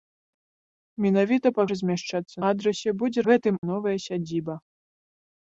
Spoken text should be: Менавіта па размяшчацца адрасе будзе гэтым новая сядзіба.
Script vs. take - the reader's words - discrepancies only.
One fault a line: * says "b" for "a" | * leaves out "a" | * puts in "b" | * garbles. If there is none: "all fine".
all fine